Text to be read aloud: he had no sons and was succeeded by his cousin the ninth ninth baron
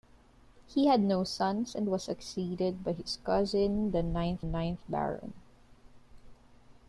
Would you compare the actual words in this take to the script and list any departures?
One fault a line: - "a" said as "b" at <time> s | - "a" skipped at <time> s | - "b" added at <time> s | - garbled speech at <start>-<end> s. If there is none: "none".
none